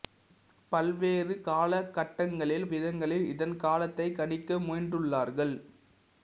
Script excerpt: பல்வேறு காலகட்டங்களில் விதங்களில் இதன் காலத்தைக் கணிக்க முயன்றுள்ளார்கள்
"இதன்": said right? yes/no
yes